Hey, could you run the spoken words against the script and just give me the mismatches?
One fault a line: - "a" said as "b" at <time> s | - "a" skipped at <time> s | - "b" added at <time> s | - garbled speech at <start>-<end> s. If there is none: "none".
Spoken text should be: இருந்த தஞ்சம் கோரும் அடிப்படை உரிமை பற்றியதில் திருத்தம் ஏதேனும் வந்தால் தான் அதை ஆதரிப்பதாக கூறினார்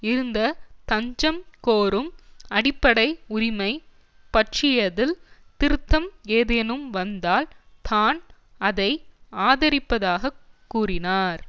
none